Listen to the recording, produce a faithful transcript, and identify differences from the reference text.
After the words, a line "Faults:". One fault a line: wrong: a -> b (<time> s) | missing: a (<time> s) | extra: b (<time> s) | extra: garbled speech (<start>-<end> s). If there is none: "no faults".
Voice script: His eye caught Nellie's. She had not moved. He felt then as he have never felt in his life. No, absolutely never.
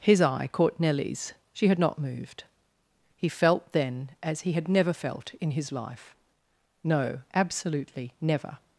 His eye caught Nellie's. She had not moved. He felt then as he had never felt in his life. No, absolutely never.
Faults:
wrong: have -> had (4.5 s)